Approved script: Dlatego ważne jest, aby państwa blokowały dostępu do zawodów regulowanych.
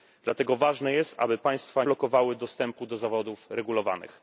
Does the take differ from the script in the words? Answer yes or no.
no